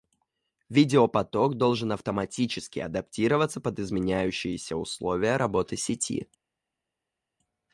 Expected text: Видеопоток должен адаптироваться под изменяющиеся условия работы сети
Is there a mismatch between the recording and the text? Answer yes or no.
yes